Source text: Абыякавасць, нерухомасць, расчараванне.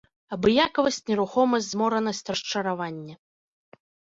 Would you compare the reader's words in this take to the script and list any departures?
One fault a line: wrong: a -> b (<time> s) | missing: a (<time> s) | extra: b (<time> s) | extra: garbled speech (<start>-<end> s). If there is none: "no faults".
extra: зморанасць (1.7 s)